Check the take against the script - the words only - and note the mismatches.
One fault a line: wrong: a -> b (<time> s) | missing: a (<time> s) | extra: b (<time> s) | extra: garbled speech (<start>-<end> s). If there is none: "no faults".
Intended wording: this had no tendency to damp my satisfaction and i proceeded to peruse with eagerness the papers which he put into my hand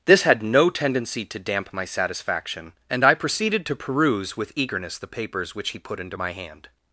no faults